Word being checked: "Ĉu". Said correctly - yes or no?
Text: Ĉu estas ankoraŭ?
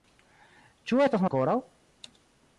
yes